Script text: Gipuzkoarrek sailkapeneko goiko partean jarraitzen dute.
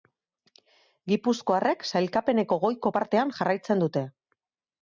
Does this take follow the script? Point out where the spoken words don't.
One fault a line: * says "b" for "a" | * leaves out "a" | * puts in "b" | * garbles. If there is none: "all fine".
all fine